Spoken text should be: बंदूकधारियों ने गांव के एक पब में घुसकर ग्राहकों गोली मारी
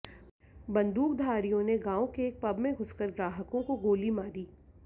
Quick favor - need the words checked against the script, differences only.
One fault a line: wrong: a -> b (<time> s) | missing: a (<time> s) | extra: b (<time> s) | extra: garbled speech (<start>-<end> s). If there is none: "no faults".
extra: को (3.6 s)